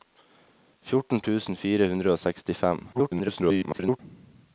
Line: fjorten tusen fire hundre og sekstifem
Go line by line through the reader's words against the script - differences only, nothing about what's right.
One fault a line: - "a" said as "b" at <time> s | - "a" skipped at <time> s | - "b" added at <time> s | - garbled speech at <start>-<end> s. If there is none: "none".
- garbled speech at 2.9-4.0 s